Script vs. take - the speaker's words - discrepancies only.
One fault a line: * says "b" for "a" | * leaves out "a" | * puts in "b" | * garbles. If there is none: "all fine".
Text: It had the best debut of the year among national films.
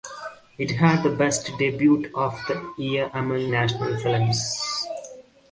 all fine